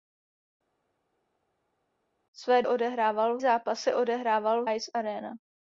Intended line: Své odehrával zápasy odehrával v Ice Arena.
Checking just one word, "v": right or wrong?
right